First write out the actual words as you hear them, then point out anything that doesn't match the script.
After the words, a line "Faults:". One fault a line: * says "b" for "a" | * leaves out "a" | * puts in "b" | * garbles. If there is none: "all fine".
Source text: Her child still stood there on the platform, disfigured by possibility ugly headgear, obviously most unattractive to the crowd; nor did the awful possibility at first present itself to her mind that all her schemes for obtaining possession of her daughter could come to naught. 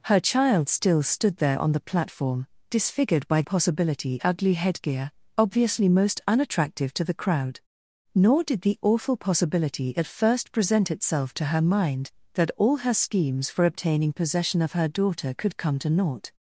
Her child still stood there on the platform, disfigured by possibility ugly headgear, obviously most unattractive to the crowd; nor did the awful possibility at first present itself to her mind that all her schemes for obtaining possession of her daughter could come to naught.
Faults:
all fine